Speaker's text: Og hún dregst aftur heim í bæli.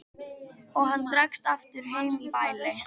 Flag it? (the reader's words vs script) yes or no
yes